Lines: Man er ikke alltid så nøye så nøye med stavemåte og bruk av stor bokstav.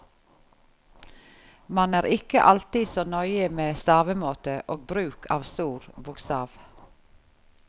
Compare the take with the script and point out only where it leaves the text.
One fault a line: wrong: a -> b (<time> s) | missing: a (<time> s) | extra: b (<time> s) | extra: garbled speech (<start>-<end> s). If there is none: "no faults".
missing: så nøye (3.5 s)